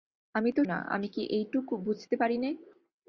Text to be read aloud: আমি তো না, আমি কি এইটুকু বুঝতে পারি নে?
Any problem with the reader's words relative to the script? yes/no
no